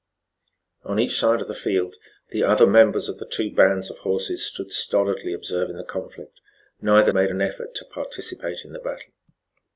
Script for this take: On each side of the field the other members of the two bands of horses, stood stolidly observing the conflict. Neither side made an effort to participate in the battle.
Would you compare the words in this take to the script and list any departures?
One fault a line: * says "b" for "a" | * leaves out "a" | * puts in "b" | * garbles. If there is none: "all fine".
* leaves out "side"